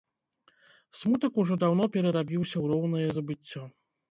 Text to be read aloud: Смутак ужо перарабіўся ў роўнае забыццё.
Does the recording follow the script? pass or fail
fail